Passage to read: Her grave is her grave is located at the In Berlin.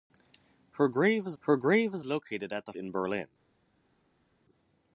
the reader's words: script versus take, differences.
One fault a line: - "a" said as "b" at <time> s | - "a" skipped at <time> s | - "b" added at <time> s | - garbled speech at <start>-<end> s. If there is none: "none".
none